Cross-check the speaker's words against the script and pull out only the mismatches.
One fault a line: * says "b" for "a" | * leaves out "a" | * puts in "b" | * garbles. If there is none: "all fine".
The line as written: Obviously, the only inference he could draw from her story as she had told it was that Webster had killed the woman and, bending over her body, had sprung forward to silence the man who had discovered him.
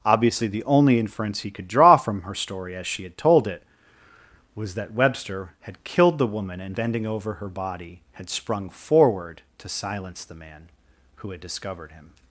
all fine